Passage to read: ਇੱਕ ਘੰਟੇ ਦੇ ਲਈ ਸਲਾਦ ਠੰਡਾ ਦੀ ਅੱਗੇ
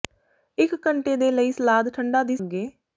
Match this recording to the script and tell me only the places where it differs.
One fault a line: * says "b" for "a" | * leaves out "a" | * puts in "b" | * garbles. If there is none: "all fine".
all fine